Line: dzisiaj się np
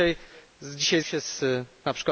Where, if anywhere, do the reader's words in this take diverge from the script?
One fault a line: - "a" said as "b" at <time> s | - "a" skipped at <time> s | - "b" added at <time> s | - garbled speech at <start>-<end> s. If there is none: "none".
none